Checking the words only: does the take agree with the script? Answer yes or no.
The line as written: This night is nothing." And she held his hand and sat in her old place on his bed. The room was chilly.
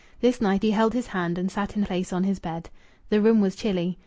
no